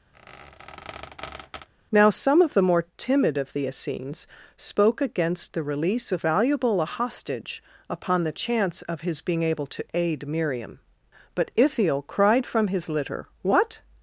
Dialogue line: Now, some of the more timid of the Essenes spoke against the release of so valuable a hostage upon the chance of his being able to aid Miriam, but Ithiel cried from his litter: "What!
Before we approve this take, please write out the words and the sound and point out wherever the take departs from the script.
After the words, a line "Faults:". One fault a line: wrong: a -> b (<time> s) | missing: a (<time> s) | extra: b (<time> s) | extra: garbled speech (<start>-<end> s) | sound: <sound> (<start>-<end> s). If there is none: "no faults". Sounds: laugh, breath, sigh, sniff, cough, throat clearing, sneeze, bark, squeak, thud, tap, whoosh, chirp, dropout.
Now, some of the more timid of the Essenes spoke against the release of valuable a hostage upon the chance of his being able to aid Miriam, but Ithiel cried from his litter: "What!
Faults:
sound: squeak (0.1-1.7 s)
missing: so (6.2 s)